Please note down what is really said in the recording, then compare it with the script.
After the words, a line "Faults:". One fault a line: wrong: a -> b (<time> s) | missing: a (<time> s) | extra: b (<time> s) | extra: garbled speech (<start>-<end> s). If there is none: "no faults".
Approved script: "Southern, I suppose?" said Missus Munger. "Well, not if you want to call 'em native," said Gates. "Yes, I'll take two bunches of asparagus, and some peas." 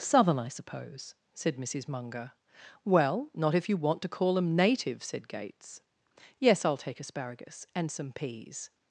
"Southern, I suppose?" said Missus Munger. "Well, not if you want to call 'em native," said Gates. "Yes, I'll take asparagus, and some peas."
Faults:
missing: two bunches of (7.0 s)